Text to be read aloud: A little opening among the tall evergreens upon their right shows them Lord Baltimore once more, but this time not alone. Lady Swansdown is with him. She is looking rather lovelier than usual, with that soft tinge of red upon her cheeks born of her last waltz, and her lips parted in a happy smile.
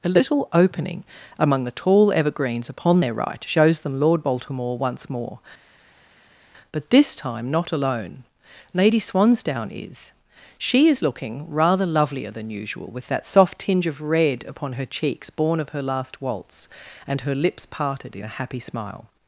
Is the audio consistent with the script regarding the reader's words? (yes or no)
no